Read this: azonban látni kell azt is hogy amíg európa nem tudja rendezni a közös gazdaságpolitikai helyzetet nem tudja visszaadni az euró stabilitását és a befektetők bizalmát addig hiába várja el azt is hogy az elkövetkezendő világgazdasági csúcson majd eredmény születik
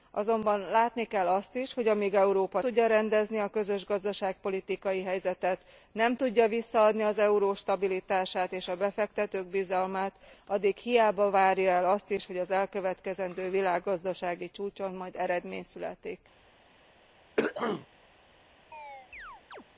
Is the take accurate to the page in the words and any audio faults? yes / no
no